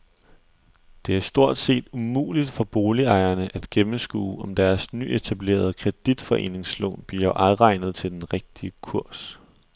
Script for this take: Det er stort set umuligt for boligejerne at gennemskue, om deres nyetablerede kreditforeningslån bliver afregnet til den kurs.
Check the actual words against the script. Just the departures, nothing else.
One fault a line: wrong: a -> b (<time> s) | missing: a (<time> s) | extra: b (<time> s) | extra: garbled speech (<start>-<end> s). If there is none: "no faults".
extra: rigtige (8.3 s)